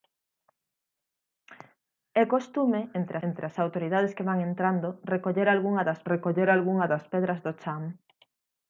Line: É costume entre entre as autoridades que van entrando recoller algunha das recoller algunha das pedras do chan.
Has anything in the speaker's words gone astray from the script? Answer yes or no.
no